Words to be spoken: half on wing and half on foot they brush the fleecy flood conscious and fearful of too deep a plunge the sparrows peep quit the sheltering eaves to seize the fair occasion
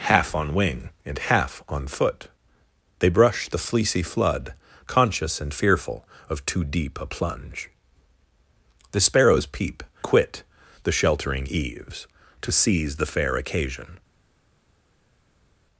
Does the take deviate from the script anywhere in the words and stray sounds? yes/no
no